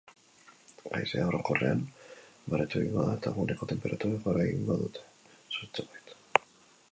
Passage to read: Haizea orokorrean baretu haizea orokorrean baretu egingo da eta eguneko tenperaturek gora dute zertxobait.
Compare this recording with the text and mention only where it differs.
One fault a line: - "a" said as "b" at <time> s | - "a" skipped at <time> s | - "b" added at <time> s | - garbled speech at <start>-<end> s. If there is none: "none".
- "haizea orokorrean baretu" skipped at 2.8 s
- "egingo" added at 4.5 s